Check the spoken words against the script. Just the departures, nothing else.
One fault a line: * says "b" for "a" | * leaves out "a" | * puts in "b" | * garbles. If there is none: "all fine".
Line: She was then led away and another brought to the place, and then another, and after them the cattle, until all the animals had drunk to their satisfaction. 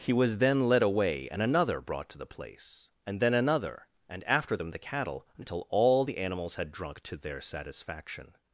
* says "He" for "She"